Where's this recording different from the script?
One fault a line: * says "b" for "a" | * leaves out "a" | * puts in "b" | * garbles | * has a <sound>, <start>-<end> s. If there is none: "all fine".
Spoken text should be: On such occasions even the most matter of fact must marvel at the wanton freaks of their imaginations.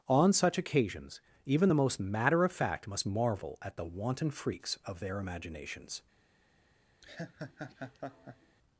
* has a laugh, 7.0-8.6 s